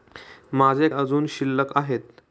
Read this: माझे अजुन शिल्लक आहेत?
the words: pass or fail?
pass